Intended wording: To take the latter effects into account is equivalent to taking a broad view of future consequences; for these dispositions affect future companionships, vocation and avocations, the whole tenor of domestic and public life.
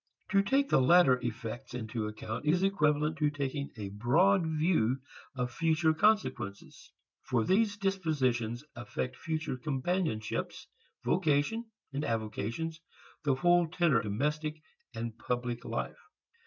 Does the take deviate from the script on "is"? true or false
false